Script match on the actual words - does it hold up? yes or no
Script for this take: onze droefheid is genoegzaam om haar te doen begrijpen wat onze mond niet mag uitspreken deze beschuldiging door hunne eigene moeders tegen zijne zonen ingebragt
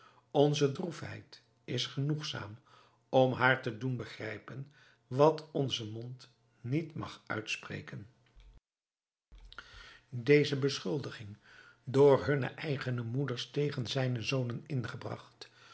yes